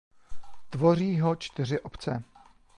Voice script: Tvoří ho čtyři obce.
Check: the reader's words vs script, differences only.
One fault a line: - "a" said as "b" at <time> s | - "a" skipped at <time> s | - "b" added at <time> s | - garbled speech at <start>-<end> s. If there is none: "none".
none